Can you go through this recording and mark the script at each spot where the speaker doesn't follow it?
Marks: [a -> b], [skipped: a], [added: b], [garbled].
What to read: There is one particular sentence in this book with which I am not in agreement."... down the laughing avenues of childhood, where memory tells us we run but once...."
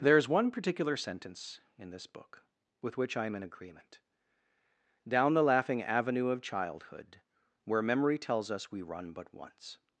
There is one particular sentence in this book with which I am [skipped: not] in agreement."... down the laughing [avenues -> avenue] of childhood, where memory tells us we run but once...."